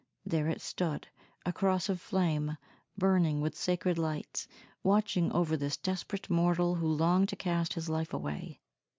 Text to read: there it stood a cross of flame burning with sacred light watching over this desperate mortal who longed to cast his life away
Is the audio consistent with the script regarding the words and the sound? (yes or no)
yes